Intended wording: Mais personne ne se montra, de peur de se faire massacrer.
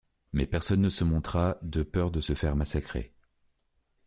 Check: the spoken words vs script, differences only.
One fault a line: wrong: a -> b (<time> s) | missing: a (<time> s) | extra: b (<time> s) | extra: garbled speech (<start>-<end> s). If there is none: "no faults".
no faults